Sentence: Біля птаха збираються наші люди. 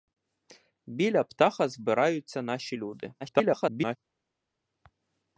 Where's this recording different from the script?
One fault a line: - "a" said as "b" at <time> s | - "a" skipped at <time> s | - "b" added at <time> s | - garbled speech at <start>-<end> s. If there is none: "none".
- garbled speech at 3.2-4.0 s